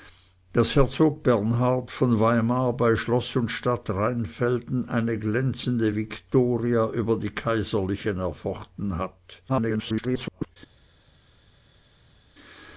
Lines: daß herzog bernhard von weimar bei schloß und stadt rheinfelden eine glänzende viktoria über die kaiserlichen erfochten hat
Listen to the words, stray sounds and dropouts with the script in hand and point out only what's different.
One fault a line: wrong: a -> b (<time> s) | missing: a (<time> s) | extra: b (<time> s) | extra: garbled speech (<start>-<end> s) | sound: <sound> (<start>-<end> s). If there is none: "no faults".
extra: garbled speech (9.5-10.6 s)